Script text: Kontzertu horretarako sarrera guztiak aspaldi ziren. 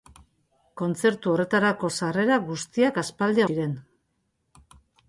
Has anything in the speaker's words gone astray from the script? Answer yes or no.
no